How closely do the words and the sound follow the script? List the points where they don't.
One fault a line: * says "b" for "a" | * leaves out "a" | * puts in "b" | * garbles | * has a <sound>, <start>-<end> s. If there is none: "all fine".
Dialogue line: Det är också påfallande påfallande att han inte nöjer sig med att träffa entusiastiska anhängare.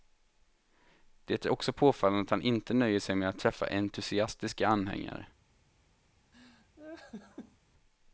* leaves out "påfallande"
* has a laugh, 6.3-7.6 s